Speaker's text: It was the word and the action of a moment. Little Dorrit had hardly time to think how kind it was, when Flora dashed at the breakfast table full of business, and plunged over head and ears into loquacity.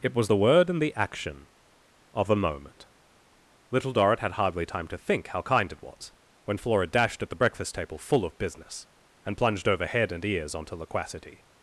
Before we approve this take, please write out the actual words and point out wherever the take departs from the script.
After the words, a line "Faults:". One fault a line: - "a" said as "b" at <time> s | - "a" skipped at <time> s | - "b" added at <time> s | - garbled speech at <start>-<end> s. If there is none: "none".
It was the word and the action of a moment. Little Dorrit had hardly time to think how kind it was, when Flora dashed at the breakfast table full of business, and plunged over head and ears onto loquacity.
Faults:
- "into" said as "onto" at 10.5 s